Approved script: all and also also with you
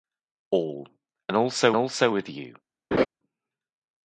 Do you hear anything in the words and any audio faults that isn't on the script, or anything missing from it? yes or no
yes